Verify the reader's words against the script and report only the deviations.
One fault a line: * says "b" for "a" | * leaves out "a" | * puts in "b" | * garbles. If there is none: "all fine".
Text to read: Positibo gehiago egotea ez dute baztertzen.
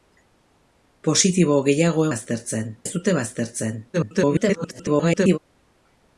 * says "baztertzen" for "egotea"
* garbles